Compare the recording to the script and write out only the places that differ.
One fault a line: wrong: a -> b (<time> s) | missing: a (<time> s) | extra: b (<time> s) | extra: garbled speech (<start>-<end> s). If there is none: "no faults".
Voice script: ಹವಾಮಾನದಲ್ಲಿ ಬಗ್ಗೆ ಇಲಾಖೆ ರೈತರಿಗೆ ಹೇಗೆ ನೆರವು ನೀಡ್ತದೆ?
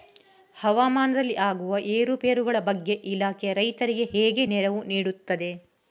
extra: ಆಗುವ ಏರುಪೇರುಗಳ (1.4 s)